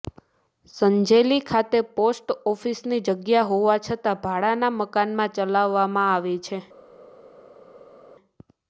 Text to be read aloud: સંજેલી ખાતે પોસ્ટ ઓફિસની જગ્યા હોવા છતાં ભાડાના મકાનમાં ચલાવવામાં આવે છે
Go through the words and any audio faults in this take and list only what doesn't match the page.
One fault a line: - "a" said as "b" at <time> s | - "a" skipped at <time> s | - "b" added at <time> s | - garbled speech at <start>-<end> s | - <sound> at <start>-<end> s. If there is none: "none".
none